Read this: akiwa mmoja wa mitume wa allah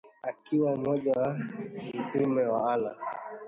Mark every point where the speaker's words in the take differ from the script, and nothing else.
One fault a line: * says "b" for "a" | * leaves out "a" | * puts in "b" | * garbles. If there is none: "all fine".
all fine